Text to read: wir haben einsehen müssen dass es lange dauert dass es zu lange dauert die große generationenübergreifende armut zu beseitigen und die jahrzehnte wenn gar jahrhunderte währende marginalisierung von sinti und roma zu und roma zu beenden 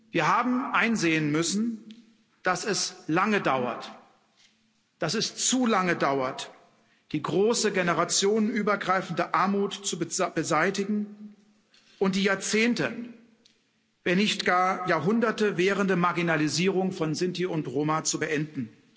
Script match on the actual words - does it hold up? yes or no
no